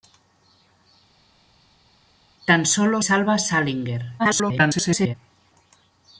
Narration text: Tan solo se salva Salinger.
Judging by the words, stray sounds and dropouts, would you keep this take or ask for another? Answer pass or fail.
fail